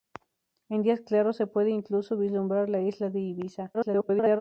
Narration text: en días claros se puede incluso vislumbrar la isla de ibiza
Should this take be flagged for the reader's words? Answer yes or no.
yes